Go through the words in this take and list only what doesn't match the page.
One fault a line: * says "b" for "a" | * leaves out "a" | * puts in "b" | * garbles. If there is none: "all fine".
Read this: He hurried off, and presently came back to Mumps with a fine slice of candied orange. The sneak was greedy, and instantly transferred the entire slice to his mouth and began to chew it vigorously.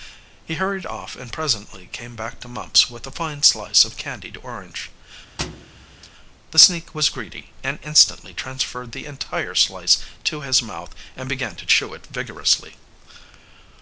all fine